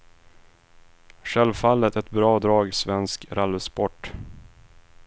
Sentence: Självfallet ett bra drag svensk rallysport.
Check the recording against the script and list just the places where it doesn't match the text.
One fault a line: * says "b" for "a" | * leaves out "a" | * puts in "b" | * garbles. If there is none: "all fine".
all fine